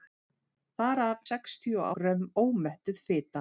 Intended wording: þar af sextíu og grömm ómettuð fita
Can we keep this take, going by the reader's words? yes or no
yes